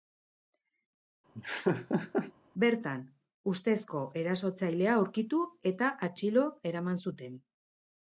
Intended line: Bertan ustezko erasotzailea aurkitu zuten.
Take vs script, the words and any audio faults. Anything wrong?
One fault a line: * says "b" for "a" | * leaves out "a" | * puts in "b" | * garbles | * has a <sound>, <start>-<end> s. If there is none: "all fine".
* has a laugh, 1.3-2.3 s
* puts in "eta atxilo eraman"